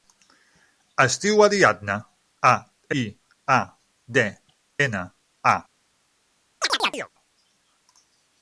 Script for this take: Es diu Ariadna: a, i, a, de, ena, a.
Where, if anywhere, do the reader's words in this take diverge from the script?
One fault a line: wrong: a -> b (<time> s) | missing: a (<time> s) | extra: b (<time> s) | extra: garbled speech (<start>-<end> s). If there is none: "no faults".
no faults